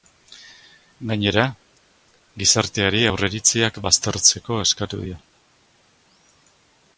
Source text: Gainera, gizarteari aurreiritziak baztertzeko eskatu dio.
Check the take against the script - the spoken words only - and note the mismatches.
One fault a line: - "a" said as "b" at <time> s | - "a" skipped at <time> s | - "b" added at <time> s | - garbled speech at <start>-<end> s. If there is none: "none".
none